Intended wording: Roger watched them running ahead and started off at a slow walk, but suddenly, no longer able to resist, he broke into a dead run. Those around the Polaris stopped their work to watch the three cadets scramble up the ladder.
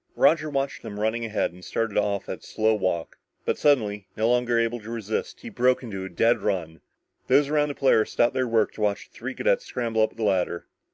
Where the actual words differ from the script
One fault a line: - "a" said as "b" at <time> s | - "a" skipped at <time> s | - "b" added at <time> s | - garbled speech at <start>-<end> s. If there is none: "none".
none